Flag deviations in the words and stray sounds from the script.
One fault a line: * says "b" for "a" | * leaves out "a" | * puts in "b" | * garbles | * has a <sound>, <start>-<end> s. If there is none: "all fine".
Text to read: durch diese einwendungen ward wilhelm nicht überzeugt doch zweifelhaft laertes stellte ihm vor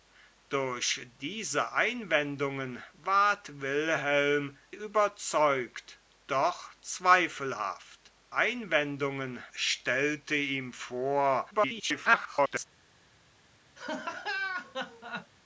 * leaves out "nicht"
* says "einwendungen" for "laertes"
* garbles
* has a laugh, 13.8-15.3 s